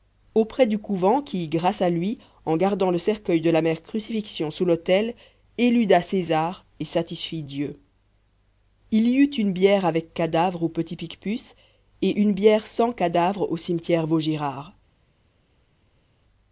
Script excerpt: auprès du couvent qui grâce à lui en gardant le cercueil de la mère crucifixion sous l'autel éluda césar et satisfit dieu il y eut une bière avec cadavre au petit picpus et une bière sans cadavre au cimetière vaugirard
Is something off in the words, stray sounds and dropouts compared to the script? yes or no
no